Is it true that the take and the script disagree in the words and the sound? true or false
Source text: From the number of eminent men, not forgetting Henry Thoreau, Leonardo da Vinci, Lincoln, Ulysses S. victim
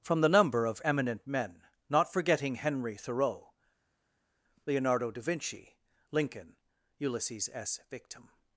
false